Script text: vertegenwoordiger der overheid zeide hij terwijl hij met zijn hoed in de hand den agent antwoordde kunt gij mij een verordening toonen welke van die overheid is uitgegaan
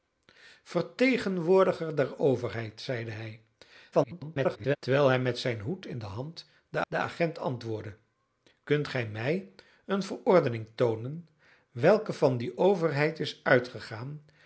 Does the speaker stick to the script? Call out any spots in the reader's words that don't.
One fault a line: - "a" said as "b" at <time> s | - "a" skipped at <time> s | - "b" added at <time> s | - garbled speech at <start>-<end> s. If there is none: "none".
- garbled speech at 3.9-4.8 s
- "den" added at 6.9 s